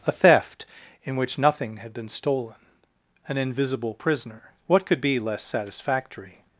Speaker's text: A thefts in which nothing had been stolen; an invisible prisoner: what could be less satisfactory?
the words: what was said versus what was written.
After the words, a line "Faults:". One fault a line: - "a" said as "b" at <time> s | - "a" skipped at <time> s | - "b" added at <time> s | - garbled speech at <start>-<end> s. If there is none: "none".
A theft in which nothing had been stolen; an invisible prisoner: what could be less satisfactory?
Faults:
- "thefts" said as "theft" at 0.1 s